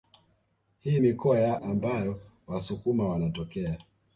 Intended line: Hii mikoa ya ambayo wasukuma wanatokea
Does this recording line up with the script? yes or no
yes